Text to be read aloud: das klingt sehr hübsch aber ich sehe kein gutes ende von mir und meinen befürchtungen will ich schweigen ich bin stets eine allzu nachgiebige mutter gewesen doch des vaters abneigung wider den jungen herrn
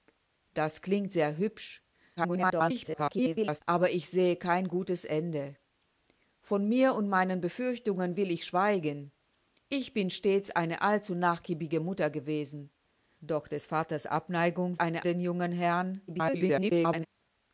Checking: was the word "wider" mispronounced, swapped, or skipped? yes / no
yes